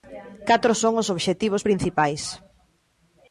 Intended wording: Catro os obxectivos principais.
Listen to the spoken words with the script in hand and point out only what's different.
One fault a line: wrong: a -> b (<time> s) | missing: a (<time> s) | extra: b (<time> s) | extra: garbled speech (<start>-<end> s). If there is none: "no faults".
extra: son (0.8 s)